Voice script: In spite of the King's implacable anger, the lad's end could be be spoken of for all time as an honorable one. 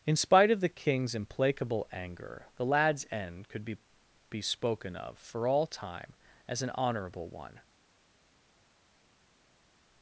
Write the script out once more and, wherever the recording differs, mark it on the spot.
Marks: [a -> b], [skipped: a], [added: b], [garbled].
In spite of the King's implacable anger, the lad's end could be be spoken of for all time as an honorable one.